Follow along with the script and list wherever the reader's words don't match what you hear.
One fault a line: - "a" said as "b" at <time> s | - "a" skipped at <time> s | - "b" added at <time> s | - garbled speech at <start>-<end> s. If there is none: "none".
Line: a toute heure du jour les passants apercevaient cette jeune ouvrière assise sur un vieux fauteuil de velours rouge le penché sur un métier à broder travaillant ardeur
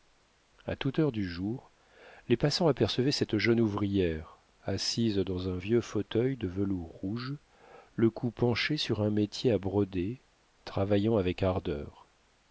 - "sur" said as "dans" at 5.2 s
- "cou" added at 8.1 s
- "avec" added at 11.2 s